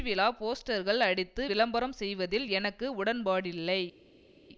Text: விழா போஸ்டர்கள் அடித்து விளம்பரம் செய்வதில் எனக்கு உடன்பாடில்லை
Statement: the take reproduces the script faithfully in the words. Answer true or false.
true